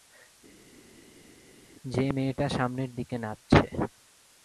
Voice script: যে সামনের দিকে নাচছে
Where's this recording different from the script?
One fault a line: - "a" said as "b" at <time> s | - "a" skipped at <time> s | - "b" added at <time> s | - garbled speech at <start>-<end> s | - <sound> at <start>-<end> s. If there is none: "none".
- "মেয়েটা" added at 2.1 s